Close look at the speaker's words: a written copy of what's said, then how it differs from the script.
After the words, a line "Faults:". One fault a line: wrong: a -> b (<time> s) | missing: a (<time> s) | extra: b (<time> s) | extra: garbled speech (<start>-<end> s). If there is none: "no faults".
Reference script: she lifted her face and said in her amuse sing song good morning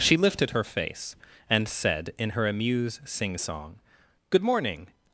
she lifted her face and said in her amuse sing song good morning
Faults:
no faults